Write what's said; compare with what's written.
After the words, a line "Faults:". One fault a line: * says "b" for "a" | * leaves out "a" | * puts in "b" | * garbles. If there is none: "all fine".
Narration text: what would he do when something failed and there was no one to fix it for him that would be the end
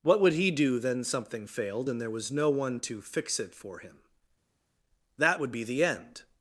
what would he do then something failed and there was no one to fix it for him that would be the end
Faults:
* says "then" for "when"